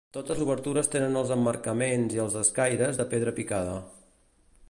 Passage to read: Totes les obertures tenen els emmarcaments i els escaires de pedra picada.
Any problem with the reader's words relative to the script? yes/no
yes